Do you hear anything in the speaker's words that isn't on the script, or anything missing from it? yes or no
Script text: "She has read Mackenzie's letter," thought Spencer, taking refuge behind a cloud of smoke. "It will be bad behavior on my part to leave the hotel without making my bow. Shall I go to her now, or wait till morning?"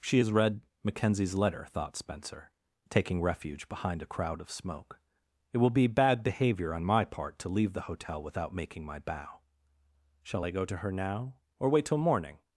yes